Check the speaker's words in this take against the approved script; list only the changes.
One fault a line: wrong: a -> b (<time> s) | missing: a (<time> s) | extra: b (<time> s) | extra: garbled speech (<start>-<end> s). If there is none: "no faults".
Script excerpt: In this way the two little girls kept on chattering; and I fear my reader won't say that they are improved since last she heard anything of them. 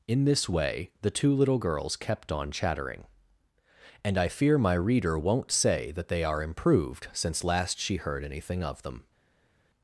no faults